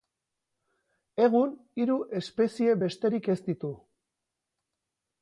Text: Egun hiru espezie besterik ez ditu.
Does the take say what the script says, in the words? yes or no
yes